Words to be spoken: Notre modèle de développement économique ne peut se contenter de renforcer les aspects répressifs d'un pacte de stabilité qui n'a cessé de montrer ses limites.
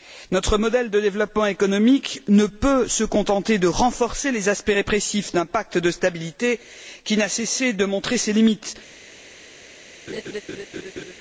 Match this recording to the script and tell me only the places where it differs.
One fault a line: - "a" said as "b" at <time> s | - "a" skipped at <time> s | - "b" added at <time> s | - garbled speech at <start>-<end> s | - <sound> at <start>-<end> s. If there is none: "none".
- laugh at 10.1-11.1 s